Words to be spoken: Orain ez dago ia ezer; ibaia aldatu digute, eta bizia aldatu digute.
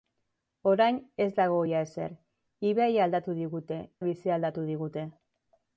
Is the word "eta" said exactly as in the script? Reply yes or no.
no